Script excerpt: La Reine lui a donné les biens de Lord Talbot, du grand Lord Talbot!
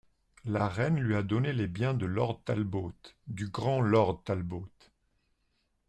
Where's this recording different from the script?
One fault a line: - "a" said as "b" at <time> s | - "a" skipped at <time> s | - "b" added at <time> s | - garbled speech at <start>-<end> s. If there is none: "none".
none